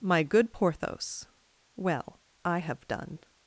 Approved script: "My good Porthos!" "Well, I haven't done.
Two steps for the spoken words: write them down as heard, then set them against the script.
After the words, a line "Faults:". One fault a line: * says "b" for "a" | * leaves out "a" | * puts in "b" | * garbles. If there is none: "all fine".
"My good Porthos!" "Well, I have done.
Faults:
* says "have" for "haven't"